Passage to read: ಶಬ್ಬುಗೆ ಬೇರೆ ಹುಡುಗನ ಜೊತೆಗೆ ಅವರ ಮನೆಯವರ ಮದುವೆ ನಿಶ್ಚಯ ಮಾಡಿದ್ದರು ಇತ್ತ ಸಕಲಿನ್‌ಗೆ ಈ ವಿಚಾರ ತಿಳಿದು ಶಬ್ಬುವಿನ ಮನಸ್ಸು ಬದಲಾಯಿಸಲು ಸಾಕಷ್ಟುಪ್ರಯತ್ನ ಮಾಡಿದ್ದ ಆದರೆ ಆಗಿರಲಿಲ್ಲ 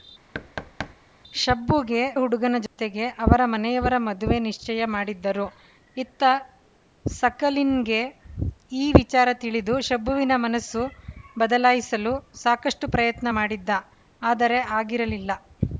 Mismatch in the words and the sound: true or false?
true